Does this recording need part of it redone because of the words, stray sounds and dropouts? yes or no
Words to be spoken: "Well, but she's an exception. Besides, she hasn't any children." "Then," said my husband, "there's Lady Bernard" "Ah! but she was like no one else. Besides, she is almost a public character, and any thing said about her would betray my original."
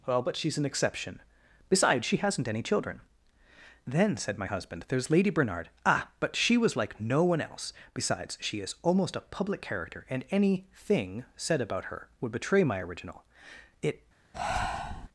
yes